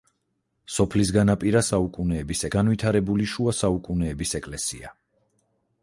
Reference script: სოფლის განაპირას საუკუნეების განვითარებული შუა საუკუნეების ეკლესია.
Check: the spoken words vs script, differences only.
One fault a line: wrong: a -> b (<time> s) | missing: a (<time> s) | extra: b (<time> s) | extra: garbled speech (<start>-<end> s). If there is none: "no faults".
no faults